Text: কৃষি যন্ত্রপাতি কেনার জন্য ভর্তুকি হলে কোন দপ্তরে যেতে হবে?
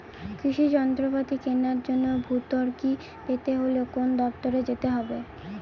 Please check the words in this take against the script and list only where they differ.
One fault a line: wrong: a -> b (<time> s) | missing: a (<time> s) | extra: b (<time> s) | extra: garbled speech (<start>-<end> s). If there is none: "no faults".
extra: পেতে (3.2 s)